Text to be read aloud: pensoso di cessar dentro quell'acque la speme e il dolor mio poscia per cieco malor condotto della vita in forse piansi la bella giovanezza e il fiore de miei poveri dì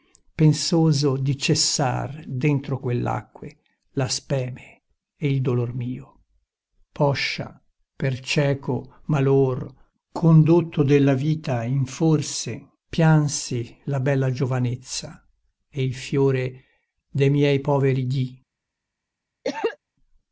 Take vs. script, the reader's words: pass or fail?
pass